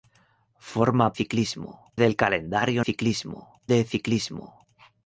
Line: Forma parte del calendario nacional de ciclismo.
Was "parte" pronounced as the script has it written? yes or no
no